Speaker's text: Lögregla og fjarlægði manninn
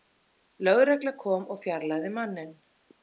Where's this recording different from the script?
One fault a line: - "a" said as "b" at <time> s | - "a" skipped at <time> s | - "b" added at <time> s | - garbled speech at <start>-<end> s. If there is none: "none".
- "kom" added at 1.2 s